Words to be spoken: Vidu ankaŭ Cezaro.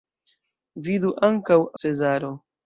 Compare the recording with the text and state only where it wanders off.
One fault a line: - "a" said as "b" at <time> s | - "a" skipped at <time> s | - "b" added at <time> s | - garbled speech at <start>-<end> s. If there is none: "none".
none